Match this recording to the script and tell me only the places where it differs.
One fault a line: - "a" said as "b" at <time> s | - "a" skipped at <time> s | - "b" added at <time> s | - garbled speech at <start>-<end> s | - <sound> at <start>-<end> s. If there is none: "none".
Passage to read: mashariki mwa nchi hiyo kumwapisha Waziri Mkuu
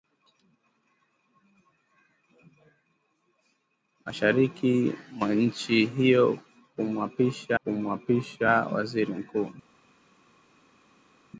- "kumwapisha" added at 7.6 s